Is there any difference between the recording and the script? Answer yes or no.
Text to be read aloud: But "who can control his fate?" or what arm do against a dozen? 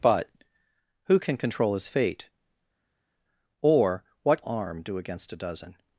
no